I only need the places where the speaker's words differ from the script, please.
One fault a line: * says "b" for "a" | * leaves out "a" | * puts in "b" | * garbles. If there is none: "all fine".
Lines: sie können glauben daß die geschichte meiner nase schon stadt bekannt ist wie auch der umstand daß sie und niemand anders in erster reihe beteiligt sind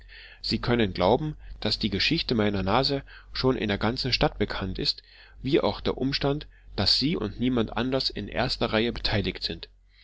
* puts in "in der ganzen"